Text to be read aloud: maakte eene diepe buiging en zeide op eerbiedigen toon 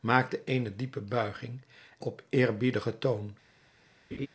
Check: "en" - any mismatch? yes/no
yes